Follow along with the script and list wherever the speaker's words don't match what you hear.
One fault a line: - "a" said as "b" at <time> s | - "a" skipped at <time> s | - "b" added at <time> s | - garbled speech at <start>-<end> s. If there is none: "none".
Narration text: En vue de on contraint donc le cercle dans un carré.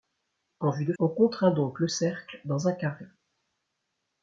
none